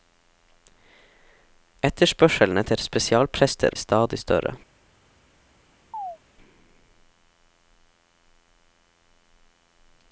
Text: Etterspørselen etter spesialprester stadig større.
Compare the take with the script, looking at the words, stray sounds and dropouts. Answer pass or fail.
fail